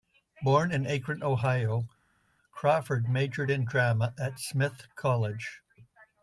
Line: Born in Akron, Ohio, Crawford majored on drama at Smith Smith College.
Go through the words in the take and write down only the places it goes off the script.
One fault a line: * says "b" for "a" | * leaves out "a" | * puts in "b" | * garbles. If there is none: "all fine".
* says "in" for "on"
* leaves out "Smith"